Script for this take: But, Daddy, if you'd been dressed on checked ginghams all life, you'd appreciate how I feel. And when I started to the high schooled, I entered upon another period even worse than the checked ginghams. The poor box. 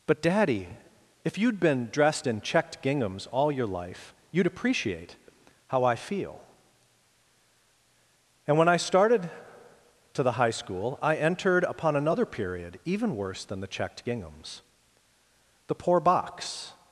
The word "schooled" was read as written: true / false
false